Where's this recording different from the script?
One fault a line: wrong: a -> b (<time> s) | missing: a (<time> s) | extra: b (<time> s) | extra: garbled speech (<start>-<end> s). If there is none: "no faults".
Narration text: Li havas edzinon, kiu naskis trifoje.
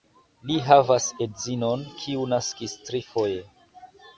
no faults